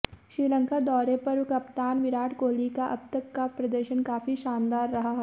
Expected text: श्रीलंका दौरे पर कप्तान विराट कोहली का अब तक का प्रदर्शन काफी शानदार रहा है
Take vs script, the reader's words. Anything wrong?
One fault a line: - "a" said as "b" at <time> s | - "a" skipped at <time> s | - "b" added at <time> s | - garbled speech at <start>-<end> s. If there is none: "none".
none